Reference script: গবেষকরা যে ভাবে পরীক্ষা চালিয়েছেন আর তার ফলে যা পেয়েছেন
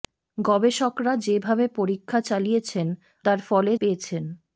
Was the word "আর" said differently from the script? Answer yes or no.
yes